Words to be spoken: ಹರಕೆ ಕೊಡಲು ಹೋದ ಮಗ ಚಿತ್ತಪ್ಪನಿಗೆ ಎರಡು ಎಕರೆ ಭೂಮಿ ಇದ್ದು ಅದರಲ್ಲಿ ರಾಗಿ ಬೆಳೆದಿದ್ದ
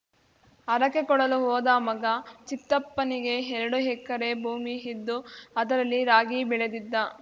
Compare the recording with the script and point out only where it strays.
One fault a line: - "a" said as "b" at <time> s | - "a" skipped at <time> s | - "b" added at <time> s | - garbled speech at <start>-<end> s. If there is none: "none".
none